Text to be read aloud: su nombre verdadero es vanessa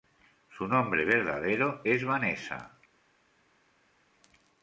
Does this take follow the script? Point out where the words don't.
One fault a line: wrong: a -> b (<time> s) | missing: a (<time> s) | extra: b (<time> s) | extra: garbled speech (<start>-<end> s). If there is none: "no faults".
no faults